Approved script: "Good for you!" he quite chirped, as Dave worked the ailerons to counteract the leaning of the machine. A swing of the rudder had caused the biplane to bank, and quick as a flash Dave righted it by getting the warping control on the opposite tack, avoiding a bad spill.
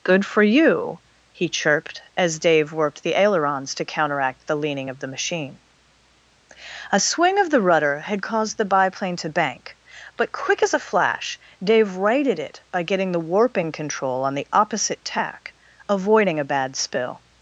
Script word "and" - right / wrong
wrong